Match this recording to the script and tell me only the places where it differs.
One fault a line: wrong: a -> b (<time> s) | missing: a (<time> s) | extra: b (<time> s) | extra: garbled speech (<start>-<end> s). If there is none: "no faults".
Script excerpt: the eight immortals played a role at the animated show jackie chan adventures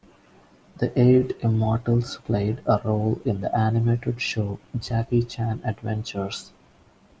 wrong: at -> in (3.3 s)